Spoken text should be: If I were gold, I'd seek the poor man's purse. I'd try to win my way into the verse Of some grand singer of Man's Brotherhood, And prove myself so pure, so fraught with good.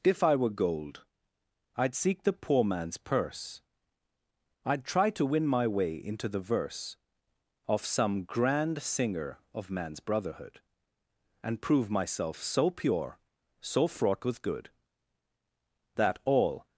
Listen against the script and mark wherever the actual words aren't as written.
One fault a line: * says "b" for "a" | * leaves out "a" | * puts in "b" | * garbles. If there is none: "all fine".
* puts in "That all"